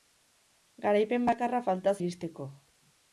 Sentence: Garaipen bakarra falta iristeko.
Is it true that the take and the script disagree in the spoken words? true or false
false